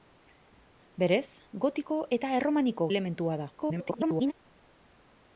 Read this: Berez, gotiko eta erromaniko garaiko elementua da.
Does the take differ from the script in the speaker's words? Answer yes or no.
yes